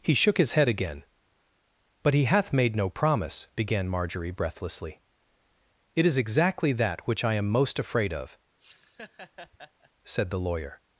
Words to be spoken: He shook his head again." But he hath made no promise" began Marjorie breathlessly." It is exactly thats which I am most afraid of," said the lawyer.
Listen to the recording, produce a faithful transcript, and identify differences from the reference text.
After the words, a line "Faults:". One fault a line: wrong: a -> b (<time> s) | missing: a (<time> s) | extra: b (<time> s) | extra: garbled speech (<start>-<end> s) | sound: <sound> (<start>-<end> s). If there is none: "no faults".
He shook his head again." But he hath made no promise" began Marjorie breathlessly." It is exactly that which I am most afraid of," said the lawyer.
Faults:
wrong: thats -> that (6.7 s)
sound: laugh (8.6-9.9 s)